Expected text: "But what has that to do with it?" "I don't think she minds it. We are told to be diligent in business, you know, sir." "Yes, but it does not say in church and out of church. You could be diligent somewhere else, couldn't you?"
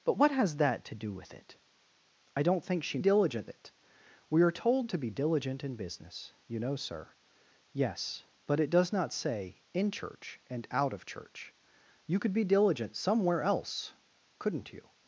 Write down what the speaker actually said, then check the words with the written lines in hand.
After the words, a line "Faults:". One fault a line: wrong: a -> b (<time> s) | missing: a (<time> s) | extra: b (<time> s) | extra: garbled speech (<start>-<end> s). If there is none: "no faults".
"But what has that to do with it?" "I don't think she diligent it. We are told to be diligent in business, you know, sir." "Yes, but it does not say in church and out of church. You could be diligent somewhere else, couldn't you?"
Faults:
wrong: minds -> diligent (3.0 s)